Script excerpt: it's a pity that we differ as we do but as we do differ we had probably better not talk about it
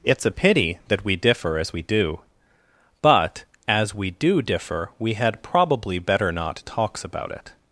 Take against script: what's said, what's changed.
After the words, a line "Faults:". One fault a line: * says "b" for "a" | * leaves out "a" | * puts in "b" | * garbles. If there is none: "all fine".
it's a pity that we differ as we do but as we do differ we had probably better not talks about it
Faults:
* says "talks" for "talk"